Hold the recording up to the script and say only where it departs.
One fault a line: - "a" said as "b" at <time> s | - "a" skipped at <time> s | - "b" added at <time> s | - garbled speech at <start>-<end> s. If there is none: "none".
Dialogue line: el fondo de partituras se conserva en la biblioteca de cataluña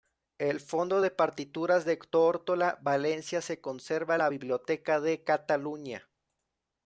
- "de tórtola valencia" added at 1.8 s